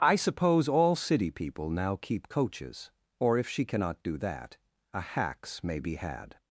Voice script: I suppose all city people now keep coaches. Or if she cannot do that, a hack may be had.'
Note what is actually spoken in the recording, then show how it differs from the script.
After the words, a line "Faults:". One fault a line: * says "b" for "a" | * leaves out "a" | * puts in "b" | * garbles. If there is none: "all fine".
I suppose all city people now keep coaches. Or if she cannot do that, a hacks may be had.'
Faults:
* says "hacks" for "hack"